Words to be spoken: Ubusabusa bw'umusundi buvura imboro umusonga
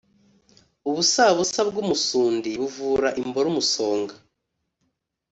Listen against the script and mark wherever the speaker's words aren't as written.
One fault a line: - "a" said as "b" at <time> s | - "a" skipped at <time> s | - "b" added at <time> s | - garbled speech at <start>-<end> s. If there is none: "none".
none